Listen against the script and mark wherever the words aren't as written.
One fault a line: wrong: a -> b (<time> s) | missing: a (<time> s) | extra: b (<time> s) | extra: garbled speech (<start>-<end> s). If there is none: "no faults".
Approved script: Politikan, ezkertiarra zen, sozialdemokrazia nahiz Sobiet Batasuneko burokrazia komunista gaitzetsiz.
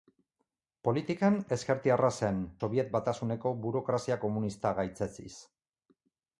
missing: sozialdemokrazia nahiz (2.4 s)